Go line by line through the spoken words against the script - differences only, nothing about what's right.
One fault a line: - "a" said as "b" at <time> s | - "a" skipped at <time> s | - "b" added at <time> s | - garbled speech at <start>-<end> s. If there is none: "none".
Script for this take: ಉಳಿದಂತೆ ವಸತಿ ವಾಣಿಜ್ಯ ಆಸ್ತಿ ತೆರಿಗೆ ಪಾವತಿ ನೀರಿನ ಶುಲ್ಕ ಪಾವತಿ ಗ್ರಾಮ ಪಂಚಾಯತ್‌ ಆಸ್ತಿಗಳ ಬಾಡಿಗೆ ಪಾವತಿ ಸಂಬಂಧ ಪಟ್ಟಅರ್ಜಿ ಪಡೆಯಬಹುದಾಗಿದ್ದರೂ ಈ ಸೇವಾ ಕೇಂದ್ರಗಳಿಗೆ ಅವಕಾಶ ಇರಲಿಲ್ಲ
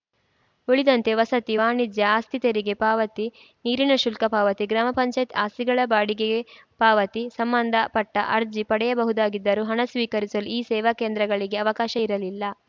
- "ಹಣ ಸ್ವೀಕರಿಸಲು" added at 9.6 s